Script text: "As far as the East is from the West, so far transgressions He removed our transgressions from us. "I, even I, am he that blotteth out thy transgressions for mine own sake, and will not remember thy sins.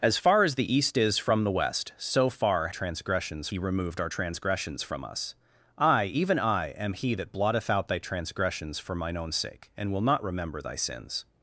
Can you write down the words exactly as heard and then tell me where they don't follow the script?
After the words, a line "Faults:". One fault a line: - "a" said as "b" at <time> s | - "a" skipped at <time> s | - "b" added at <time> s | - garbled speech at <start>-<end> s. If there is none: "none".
"As far as the East is from the West, so far transgressions He removed our transgressions from us. "I, even I, am he that blotteth out thy transgressions for mine own sake, and will not remember thy sins.
Faults:
none